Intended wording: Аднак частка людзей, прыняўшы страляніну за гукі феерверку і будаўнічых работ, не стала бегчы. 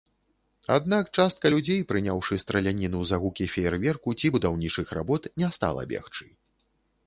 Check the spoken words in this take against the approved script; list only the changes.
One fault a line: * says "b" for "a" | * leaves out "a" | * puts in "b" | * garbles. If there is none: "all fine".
* says "ці" for "і"